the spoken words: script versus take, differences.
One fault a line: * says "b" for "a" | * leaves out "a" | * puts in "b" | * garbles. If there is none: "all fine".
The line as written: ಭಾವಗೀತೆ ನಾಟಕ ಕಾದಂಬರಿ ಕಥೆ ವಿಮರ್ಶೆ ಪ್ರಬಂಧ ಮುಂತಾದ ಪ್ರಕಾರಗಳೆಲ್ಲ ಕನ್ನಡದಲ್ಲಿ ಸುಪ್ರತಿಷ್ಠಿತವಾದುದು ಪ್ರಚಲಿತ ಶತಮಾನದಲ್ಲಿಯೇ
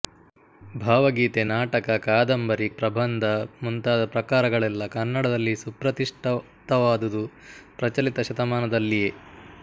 * leaves out "ಕಥೆ ವಿಮರ್ಶೆ"